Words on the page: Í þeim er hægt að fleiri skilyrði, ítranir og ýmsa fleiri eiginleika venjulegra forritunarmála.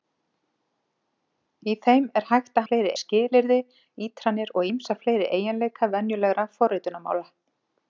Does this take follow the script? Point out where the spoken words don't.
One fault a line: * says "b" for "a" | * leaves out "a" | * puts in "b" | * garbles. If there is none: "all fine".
all fine